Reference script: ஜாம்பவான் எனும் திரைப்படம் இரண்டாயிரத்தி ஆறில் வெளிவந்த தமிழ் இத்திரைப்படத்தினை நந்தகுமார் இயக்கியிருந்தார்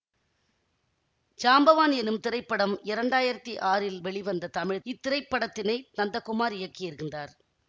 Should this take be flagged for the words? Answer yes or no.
no